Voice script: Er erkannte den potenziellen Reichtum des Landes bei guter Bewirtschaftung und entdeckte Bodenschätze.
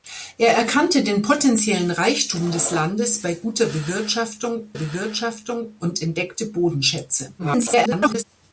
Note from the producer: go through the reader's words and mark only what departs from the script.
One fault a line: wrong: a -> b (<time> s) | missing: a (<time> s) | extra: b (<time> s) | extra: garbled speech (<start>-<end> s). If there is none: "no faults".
extra: Bewirtschaftung (4.7 s)
extra: garbled speech (7.4-8.2 s)